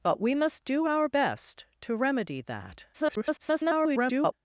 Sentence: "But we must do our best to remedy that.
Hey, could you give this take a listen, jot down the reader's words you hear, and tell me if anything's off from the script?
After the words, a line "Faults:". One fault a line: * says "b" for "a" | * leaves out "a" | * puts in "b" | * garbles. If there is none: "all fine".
"But we must do our best to remedy that. [garbled]
Faults:
* garbles